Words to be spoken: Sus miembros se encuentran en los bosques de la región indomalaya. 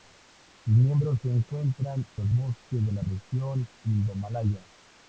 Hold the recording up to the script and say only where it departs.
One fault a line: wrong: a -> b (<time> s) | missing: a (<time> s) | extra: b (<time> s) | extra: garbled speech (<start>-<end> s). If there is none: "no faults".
missing: en (2.0 s)